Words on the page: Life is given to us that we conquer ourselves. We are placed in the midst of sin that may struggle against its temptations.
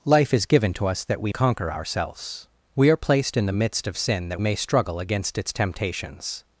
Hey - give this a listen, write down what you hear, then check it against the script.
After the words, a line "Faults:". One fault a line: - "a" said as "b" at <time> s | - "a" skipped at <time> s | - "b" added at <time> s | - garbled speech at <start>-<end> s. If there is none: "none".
Life is given to us that we conquer ourselves. We are placed in the midst of sin that may struggle against its temptations.
Faults:
none